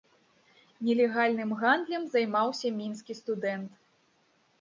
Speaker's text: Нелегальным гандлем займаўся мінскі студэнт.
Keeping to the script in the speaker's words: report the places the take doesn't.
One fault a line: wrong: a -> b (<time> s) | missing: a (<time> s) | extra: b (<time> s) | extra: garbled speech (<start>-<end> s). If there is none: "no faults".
no faults